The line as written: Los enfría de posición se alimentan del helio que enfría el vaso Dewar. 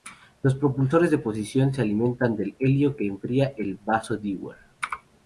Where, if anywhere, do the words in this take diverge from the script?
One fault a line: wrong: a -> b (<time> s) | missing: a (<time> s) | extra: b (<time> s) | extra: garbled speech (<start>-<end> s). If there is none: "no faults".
wrong: enfría -> propulsores (0.6 s)